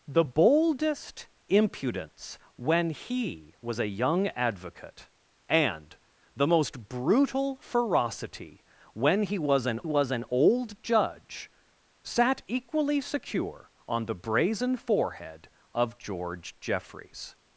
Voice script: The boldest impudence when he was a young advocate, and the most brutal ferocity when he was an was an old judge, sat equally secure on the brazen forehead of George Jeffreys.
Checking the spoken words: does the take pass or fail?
pass